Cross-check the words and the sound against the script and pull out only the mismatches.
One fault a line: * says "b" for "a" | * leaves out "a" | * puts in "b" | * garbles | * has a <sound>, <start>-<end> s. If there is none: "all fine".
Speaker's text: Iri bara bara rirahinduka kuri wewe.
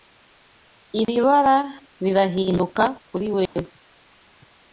* has a dropout, 1.0-1.1 s
* leaves out "bara"
* has a dropout, 3.5-3.6 s